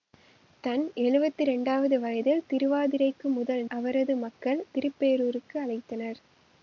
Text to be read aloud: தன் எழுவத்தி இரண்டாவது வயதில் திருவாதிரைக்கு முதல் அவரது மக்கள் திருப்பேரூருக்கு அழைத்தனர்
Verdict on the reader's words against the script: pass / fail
pass